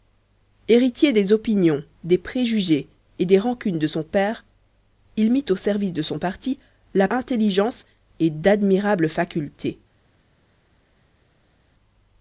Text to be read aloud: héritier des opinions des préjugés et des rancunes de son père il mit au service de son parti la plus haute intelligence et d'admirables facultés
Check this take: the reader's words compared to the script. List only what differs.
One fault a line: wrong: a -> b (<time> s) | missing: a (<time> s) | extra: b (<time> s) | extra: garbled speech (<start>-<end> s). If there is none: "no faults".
missing: plus haute (7.1 s)